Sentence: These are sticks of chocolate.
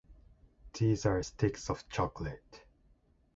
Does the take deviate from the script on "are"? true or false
false